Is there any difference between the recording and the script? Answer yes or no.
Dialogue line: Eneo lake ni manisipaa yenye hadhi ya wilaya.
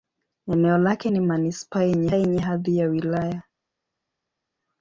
yes